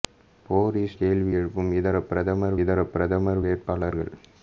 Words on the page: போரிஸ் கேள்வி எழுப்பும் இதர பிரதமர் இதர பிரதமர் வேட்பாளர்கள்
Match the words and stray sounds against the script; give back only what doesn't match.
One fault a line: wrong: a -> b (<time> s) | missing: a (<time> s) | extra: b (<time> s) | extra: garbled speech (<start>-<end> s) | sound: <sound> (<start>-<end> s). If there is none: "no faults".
no faults